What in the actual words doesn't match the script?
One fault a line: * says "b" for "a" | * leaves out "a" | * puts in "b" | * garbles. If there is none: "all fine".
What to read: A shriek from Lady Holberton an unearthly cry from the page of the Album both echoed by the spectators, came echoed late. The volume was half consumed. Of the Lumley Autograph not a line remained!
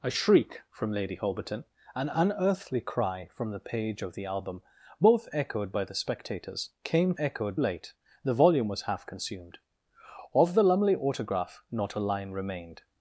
all fine